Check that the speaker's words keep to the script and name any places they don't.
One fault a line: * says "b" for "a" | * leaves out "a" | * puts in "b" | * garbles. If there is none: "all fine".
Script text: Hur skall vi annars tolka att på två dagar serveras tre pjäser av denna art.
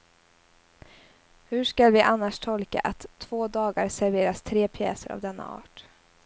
* leaves out "på"